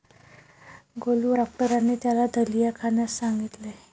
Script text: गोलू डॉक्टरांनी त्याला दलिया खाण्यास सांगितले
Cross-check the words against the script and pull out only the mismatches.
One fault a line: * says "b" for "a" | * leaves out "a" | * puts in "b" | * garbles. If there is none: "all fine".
all fine